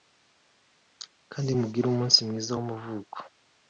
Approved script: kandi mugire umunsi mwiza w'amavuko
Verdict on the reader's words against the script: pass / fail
pass